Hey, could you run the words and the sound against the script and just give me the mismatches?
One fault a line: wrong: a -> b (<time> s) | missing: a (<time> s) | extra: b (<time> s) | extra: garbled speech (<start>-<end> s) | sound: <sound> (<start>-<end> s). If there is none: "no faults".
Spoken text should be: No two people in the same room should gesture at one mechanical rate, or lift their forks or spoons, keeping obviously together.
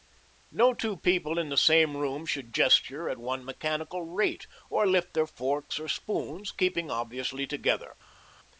no faults